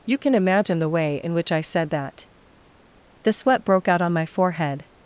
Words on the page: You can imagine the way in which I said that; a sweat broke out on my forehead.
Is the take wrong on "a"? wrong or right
wrong